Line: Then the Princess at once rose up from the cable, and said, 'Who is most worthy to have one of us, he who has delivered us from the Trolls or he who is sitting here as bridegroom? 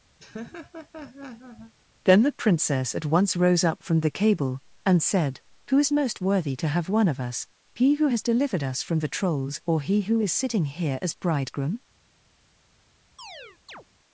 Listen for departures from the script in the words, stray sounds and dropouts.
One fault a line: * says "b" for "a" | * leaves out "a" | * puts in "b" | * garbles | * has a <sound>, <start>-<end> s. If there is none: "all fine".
* has a laugh, 0.2-1.7 s
* has a chirp, 13.2-13.8 s